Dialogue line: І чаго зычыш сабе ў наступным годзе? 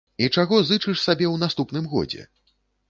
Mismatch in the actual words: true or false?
false